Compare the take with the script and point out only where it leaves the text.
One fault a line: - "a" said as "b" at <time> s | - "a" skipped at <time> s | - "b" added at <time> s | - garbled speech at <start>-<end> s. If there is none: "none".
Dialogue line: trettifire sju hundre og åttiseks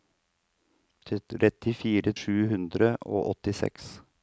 none